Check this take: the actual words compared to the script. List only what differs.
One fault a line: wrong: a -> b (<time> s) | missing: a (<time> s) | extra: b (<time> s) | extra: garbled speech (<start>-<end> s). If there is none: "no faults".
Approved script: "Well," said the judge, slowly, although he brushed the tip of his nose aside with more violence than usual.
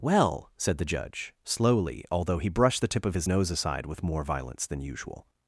no faults